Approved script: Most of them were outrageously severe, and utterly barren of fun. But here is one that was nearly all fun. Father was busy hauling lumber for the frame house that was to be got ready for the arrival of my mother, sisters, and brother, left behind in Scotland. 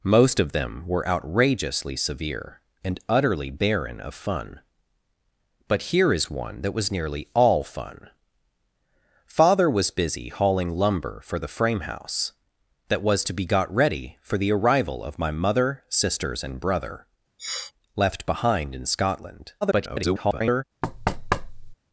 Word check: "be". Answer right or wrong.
right